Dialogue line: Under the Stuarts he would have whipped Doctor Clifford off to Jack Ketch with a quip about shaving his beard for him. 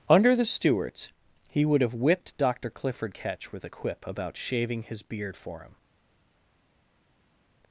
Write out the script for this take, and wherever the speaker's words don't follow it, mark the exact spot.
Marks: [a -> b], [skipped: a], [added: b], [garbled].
Under the Stuarts he would have whipped Doctor Clifford [skipped: off to Jack] Ketch with a quip about shaving his beard for him.